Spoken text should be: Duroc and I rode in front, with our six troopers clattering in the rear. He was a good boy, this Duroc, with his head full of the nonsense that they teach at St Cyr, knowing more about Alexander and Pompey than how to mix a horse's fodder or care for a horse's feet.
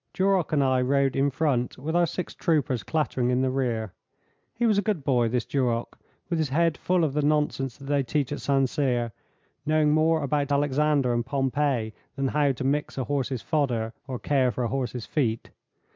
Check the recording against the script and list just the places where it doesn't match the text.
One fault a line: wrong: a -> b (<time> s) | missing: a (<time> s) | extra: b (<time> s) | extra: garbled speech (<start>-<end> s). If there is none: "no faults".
no faults